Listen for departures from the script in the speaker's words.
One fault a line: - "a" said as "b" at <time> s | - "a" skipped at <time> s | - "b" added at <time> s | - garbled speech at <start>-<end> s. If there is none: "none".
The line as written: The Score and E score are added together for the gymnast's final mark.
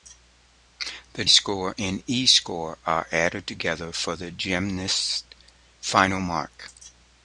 none